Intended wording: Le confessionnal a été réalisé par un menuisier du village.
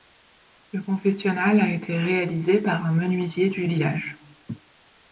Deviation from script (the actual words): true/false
false